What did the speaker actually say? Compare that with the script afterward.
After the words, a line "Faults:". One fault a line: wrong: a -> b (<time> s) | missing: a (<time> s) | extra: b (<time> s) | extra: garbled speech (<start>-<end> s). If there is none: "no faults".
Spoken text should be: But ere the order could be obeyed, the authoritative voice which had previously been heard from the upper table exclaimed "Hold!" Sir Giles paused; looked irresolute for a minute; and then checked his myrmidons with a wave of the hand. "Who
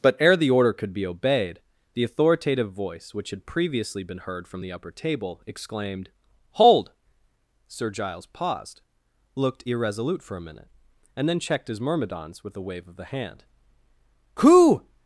But ere the order could be obeyed, the authoritative voice which had previously been heard from the upper table exclaimed "Hold!" Sir Giles paused; looked irresolute for a minute; and then checked his myrmidons with a wave of the hand. "Who
Faults:
no faults